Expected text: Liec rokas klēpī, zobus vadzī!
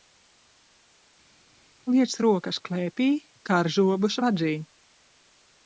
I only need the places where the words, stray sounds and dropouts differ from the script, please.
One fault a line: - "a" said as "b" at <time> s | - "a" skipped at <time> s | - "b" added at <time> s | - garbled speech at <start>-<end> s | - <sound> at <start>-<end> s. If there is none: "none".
- "kar" added at 3.5 s